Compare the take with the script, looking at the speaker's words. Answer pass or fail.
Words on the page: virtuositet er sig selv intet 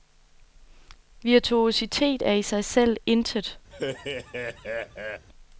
fail